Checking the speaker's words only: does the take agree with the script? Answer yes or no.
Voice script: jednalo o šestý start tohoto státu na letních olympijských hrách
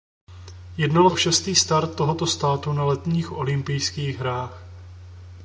yes